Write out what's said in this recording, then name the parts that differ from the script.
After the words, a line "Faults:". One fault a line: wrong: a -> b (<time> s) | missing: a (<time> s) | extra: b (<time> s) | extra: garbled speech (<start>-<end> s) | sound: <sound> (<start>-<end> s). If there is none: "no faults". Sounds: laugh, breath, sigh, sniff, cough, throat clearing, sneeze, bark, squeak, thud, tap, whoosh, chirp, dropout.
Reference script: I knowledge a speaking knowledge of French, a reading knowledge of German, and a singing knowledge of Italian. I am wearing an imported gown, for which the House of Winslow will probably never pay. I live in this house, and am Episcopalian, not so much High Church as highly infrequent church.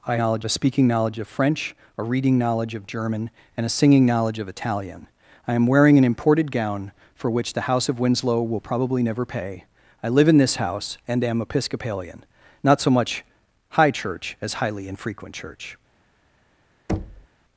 I knowledge a speaking knowledge of French, a reading knowledge of German, and a singing knowledge of Italian. I am wearing an imported gown, for which the House of Winslow will probably never pay. I live in this house, and am Episcopalian, not so much High Church as highly infrequent church.
Faults:
sound: thud (16.9-17.3 s)